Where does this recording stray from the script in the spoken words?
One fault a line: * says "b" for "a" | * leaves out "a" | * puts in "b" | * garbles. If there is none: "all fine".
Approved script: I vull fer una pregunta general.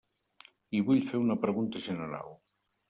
all fine